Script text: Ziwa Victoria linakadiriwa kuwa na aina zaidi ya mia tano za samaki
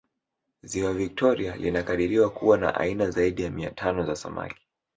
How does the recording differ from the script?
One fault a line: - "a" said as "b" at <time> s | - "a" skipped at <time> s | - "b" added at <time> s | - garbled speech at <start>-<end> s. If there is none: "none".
none